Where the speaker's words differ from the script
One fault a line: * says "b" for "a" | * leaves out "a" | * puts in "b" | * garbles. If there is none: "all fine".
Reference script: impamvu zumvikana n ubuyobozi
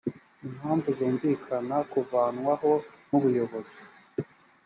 * puts in "kuvanwaho"